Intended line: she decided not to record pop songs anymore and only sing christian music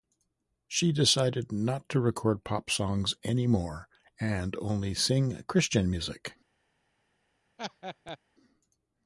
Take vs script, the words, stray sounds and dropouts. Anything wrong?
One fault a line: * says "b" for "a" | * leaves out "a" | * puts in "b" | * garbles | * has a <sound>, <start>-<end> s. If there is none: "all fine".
* has a laugh, 7.6-8.2 s